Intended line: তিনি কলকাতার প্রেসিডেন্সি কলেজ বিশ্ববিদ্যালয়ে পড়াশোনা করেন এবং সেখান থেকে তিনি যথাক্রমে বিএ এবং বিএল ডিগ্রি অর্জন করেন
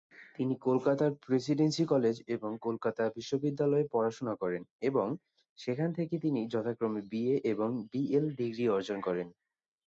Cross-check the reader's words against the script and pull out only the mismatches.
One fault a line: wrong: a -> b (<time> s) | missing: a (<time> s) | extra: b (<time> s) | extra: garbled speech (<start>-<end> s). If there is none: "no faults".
extra: এবং কলকাতা (2.4 s)